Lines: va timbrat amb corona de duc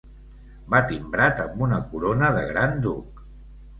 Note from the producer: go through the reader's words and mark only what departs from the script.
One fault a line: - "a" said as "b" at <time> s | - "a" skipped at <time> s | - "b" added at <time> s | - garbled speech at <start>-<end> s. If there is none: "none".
- "una" added at 1.7 s
- "gran" added at 2.5 s